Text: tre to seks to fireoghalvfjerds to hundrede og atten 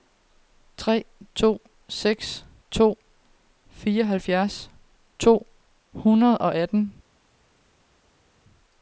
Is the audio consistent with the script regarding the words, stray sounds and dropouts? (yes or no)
yes